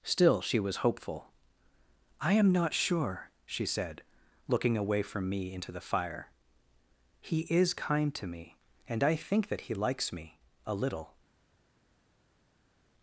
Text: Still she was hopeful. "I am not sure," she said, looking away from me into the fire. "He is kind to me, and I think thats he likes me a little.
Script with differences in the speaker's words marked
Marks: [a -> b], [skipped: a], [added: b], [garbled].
Still she was hopeful. "I am not sure," she said, looking away from me into the fire. "He is kind to me, and I think [thats -> that] he likes me a little.